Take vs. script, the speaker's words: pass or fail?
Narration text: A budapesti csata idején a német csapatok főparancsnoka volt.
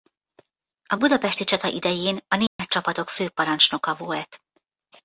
pass